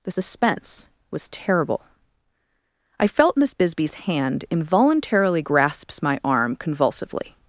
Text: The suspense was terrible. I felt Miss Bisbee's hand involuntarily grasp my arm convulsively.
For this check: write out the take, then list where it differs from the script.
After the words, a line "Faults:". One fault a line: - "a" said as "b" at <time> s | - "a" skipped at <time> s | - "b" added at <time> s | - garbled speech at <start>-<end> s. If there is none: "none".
The suspense was terrible. I felt Miss Bisbee's hand involuntarily grasps my arm convulsively.
Faults:
- "grasp" said as "grasps" at 5.4 s